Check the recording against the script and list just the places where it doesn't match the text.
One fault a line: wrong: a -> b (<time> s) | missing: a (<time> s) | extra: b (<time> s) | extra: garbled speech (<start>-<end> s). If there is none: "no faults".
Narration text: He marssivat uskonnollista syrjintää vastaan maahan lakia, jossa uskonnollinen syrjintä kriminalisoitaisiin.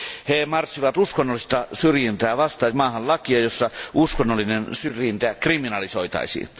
no faults